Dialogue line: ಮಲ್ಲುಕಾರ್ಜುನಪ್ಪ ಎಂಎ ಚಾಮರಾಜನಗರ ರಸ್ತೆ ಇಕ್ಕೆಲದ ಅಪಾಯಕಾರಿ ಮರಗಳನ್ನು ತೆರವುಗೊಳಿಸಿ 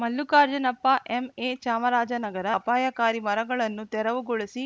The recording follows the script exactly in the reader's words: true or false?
false